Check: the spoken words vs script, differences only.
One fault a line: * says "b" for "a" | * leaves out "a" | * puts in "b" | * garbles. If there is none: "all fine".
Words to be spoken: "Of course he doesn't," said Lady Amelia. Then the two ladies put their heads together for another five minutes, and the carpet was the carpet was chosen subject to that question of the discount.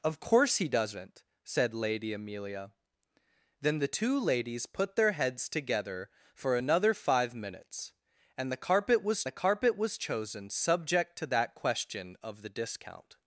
all fine